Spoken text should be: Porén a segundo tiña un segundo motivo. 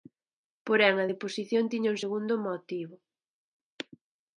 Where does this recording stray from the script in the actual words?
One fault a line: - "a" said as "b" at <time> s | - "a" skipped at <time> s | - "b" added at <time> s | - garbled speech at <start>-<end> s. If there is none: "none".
- "segundo" said as "deposición" at 1.1 s